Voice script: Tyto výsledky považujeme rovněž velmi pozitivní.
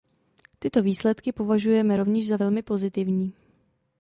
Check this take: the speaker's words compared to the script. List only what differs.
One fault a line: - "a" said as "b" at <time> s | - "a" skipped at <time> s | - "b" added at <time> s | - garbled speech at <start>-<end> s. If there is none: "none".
- "za" added at 2.3 s